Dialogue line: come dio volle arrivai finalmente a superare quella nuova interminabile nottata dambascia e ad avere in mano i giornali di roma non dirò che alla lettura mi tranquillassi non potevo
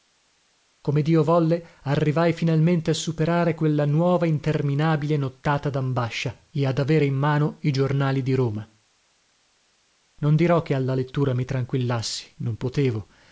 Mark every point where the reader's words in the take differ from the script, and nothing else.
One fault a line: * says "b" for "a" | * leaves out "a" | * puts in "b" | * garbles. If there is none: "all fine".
all fine